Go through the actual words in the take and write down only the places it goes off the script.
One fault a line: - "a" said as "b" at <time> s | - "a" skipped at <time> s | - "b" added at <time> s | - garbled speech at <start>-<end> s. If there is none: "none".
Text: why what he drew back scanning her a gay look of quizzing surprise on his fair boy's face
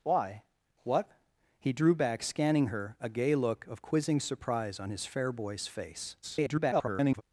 - garbled speech at 6.2-7.2 s